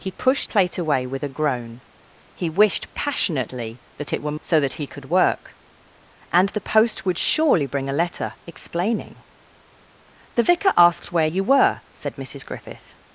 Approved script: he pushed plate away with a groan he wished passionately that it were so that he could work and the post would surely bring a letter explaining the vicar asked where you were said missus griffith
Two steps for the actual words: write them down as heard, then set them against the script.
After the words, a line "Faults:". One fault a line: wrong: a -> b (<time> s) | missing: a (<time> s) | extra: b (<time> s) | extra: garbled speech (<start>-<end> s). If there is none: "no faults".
he pushed plate away with a groan he wished passionately that it were so that he could work and the post would surely bring a letter explaining the vicar asked where you were said missus griffith
Faults:
no faults